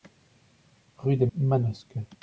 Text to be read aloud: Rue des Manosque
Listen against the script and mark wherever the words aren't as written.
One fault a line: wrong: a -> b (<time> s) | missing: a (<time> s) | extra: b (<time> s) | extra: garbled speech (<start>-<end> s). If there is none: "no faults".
no faults